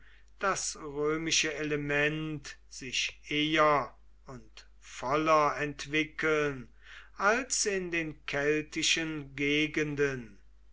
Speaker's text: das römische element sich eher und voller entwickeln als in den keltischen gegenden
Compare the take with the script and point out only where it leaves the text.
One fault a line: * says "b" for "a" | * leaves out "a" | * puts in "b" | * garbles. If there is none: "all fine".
all fine